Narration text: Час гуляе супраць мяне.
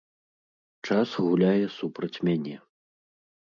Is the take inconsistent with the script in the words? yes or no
no